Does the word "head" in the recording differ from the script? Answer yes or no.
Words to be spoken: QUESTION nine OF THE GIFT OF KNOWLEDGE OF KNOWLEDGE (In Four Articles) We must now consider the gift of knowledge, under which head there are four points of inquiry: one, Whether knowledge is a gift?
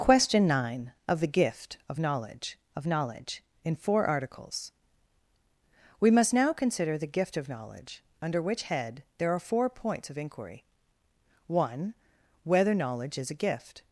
no